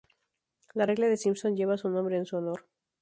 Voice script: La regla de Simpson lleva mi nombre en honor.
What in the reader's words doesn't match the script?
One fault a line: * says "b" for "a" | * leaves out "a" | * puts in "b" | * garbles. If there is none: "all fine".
* says "su" for "mi"
* puts in "su"